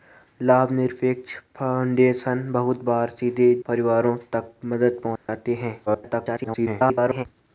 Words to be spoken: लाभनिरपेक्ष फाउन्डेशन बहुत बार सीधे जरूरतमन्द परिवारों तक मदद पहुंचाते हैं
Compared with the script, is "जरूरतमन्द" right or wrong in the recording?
wrong